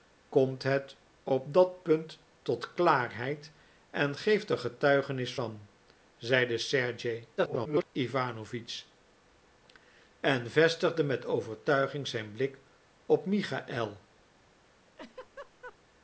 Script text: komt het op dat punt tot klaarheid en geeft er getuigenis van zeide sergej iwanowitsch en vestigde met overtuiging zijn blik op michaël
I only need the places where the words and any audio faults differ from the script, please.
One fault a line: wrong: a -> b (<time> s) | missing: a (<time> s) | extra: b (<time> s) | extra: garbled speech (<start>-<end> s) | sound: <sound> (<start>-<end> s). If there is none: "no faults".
extra: garbled speech (7.4-7.9 s)
sound: laugh (15.0-15.8 s)